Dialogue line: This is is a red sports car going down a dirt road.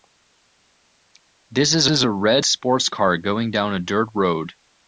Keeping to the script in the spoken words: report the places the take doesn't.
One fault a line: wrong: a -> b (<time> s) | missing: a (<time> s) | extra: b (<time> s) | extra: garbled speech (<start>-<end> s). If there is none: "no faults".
no faults